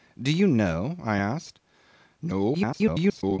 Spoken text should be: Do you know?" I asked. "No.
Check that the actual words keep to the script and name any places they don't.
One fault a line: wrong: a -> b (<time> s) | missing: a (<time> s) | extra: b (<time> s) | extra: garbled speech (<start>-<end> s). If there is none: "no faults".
extra: garbled speech (2.5-3.4 s)